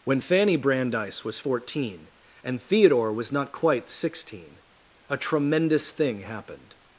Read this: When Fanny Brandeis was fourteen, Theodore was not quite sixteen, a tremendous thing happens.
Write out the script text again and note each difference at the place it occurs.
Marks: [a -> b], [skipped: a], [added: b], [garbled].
When Fanny Brandeis was fourteen, [added: and] Theodore was not quite sixteen, a tremendous thing [happens. -> happened]